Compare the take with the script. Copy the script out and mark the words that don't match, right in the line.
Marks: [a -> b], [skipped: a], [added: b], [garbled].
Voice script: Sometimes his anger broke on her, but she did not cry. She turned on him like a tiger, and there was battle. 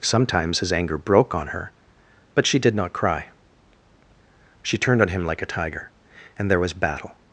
Sometimes his anger broke on her, but she did not cry. She turned on him like a tiger, and there was battle.